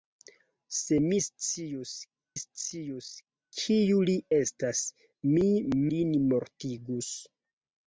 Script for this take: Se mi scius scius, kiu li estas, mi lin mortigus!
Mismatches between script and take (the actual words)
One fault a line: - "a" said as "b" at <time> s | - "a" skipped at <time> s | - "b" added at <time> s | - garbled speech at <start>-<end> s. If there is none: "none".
none